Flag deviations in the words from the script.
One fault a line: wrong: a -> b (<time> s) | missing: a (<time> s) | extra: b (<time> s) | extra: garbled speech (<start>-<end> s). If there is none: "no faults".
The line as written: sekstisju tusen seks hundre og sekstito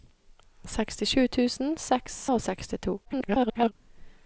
missing: hundre (2.2 s)
extra: garbled speech (3.0-3.7 s)